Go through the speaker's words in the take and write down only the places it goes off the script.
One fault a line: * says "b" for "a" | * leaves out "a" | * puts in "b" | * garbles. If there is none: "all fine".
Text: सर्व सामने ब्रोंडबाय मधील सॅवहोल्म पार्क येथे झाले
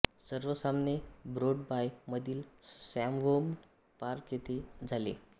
all fine